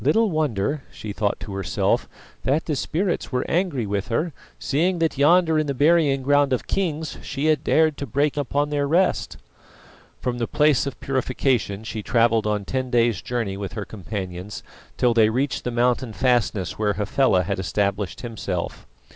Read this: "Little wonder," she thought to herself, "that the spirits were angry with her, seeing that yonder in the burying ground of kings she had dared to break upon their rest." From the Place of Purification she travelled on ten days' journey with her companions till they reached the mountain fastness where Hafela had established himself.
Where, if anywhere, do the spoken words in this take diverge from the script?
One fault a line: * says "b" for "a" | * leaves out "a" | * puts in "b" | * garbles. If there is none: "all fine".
all fine